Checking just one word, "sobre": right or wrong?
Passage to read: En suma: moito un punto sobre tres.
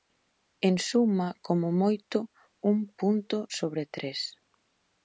right